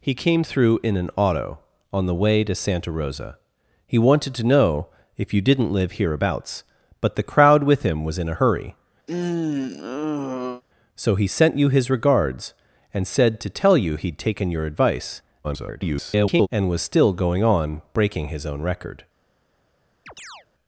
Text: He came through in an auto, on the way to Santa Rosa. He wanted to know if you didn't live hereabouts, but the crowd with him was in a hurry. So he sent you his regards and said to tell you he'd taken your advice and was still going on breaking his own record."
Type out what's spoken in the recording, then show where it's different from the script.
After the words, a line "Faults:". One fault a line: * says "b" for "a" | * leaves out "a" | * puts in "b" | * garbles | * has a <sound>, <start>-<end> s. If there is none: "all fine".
He came through in an auto, on the way to Santa Rosa. He wanted to know if you didn't live hereabouts, but the crowd with him was in a hurry. So he sent you his regards and said to tell you he'd taken your advice [garbled] and was still going on breaking his own record."
Faults:
* has a sigh, 9.1-10.6 s
* garbles
* has a chirp, 20.1-20.5 s